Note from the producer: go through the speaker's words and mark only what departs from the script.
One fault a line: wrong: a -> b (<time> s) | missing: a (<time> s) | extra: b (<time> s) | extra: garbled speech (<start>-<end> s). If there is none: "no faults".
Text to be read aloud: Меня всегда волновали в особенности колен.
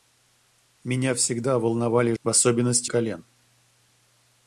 no faults